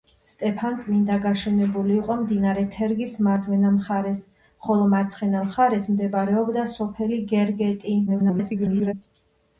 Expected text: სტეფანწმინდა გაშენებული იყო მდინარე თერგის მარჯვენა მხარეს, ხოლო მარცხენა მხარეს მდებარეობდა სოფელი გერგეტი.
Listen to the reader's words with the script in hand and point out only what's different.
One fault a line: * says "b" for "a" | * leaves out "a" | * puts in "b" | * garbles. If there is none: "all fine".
* garbles